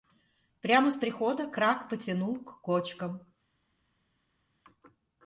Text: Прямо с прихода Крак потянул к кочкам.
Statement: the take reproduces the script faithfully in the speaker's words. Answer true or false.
true